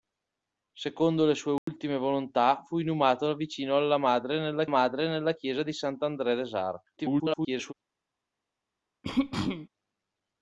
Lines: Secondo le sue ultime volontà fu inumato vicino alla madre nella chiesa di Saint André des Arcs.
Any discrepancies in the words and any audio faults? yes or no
yes